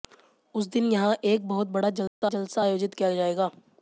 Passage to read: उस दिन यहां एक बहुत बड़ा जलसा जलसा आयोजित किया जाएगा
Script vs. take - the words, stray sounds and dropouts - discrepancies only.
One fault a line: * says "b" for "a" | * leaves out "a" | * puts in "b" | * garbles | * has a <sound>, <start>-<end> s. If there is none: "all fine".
* has a dropout, 2.1-2.2 s